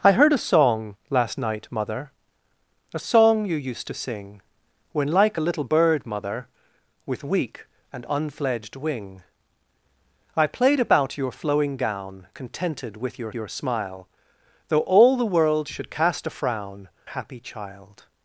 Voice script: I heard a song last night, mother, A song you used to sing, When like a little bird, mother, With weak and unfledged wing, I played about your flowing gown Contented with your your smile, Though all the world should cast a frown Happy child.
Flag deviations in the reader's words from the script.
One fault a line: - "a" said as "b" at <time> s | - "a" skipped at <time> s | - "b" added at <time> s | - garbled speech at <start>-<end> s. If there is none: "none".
none